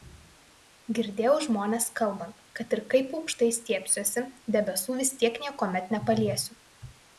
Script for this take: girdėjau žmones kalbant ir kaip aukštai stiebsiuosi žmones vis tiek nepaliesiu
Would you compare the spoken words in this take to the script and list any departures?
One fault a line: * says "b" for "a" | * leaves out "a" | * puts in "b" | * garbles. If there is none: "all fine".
* puts in "kad"
* says "debesų" for "žmones"
* puts in "niekuomet"